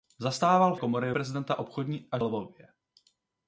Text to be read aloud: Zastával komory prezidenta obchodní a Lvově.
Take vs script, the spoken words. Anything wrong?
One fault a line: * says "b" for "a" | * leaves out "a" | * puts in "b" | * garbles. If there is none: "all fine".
all fine